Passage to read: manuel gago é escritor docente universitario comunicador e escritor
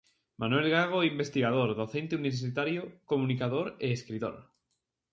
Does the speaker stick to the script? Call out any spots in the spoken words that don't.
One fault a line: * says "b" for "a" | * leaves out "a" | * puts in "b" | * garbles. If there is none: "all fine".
* says "investigador" for "escritor"